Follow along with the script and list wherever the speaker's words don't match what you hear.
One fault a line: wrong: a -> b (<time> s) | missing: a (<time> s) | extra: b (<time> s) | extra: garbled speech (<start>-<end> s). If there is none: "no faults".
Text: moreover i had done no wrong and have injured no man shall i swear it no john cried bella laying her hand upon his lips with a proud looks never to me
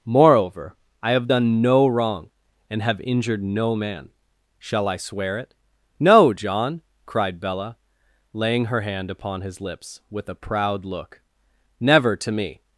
wrong: had -> have (1.1 s)
wrong: looks -> look (10.8 s)